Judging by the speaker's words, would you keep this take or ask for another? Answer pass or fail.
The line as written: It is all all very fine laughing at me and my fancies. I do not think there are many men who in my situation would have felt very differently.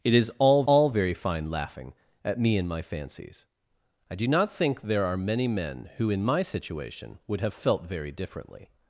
pass